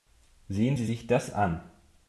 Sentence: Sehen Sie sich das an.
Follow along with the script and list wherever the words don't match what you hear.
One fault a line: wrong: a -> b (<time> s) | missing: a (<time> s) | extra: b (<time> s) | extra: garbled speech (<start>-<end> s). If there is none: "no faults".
no faults